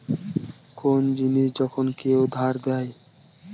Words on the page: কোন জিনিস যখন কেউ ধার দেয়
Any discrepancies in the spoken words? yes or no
no